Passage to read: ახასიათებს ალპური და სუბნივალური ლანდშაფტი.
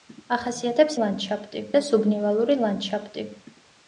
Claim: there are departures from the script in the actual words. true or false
true